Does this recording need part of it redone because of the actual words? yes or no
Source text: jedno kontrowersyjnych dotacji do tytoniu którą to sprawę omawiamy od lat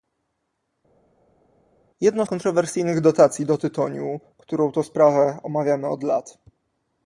no